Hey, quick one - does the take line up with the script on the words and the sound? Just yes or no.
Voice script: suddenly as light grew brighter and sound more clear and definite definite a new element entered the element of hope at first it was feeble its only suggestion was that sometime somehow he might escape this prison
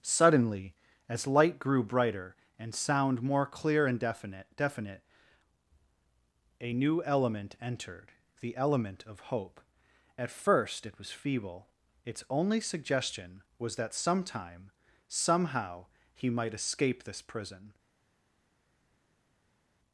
yes